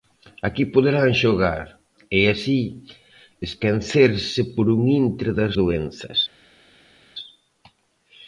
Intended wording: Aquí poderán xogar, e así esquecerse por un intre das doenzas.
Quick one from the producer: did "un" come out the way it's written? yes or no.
yes